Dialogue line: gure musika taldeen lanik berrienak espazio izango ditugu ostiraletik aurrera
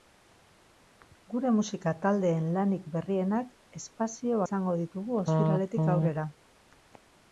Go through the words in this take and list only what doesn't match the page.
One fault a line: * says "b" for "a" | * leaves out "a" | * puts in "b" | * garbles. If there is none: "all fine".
all fine